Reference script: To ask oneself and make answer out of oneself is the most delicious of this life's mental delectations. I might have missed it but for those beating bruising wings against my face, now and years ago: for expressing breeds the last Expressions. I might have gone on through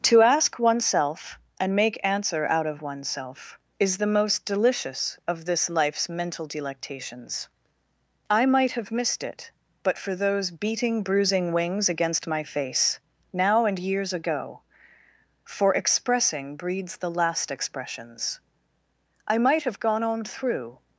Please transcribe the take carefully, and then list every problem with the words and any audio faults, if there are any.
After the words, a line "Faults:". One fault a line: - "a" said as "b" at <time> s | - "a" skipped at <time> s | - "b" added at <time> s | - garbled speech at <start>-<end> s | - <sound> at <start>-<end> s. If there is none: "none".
To ask oneself and make answer out of oneself is the most delicious of this life's mental delectations. I might have missed it but for those beating bruising wings against my face, now and years ago: for expressing breeds the last Expressions. I might have gone on through
Faults:
none